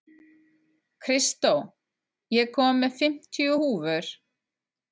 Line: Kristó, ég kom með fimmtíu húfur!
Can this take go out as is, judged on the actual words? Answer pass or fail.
pass